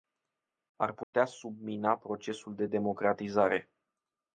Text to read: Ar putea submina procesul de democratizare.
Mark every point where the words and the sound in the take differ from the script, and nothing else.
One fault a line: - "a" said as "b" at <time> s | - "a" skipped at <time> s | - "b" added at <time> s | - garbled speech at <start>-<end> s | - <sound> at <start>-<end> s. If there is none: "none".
- dropout at 1.0-1.1 s